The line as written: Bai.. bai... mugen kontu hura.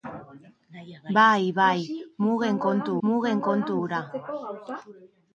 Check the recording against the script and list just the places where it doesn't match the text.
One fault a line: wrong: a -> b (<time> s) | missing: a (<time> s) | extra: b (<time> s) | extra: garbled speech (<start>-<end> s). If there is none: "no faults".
extra: mugen kontu (3.1 s)